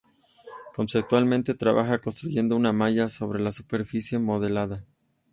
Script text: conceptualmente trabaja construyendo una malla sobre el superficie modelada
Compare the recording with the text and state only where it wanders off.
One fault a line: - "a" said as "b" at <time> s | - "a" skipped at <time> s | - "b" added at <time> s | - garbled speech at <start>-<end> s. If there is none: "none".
- "el" said as "la" at 3.4 s